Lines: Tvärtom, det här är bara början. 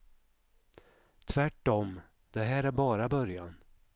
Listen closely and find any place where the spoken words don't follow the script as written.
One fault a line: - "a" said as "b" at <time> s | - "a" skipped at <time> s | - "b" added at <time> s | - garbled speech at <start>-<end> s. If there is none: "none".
none